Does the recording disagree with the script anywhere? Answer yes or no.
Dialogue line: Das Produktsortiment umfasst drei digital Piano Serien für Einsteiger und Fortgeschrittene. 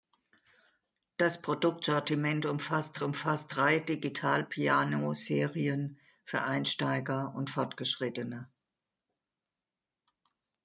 yes